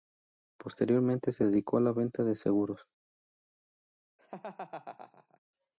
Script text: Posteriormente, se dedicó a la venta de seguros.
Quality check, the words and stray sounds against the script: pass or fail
fail